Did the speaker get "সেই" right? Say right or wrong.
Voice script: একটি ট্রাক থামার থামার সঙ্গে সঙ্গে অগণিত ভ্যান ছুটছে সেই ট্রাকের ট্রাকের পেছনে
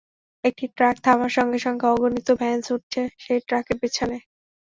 right